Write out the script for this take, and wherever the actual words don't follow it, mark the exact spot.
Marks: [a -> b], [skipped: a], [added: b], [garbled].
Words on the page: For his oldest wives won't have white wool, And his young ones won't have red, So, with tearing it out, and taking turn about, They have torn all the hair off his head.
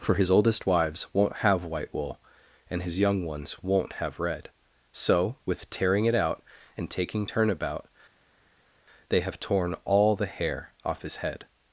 For his oldest wives won't have white wool, And his young ones won't have red, So, with tearing it out, and taking turn about, They have torn all the hair off his head.